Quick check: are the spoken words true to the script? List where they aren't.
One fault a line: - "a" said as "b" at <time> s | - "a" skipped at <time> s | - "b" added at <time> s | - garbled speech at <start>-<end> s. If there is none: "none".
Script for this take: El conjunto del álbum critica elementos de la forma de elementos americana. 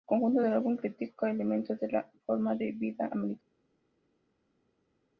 - "elementos" said as "vida" at 2.7 s